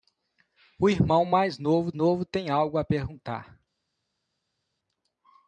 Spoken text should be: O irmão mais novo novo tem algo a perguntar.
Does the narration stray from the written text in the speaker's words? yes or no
no